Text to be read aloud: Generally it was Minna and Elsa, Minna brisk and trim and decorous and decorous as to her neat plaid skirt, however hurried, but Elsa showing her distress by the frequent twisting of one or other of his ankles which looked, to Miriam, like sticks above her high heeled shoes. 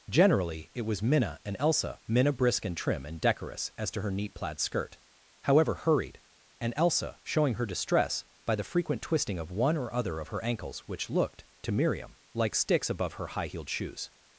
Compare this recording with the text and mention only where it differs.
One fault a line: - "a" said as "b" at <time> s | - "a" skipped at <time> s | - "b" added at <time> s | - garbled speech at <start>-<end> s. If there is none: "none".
- "and decorous" skipped at 3.7 s
- "but" said as "and" at 6.6 s
- "his" said as "her" at 10.3 s